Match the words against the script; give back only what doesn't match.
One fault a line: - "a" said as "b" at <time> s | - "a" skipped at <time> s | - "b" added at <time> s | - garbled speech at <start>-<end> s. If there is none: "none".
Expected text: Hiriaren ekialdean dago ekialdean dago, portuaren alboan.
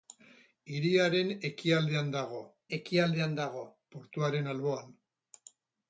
none